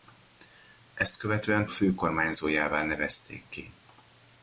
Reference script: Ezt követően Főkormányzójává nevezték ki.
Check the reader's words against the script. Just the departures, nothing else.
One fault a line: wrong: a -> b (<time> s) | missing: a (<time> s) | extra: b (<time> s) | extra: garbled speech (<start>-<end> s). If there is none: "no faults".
no faults